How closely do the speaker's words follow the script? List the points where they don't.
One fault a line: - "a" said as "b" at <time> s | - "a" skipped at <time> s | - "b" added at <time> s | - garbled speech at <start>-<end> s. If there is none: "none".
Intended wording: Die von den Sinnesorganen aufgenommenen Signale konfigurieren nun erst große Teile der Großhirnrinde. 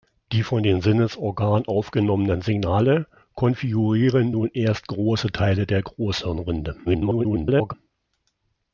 - garbled speech at 6.9-7.7 s